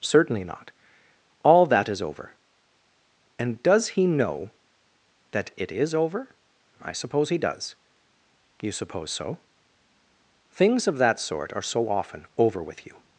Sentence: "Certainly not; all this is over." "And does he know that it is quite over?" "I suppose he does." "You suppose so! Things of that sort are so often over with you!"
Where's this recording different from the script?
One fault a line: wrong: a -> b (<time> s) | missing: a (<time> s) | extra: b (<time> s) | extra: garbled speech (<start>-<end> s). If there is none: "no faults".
wrong: this -> that (1.7 s)
missing: quite (5.9 s)